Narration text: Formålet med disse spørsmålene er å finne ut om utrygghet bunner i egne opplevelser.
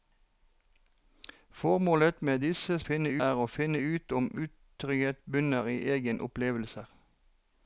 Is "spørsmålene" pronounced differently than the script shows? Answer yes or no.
yes